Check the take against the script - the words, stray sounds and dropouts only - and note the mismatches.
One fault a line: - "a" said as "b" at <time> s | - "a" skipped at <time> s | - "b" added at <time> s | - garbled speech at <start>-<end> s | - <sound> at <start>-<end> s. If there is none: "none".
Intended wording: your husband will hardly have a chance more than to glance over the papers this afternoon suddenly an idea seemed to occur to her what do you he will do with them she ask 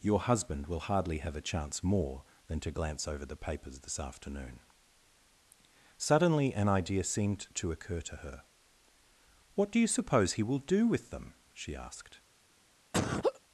- "suppose" added at 9.8 s
- "ask" said as "asked" at 11.8 s
- laugh at 12.9-13.4 s